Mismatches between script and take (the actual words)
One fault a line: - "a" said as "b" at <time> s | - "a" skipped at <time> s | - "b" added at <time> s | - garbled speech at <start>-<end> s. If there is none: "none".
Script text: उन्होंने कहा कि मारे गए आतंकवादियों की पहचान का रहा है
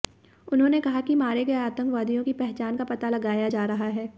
- "पता लगाया जा" added at 2.8 s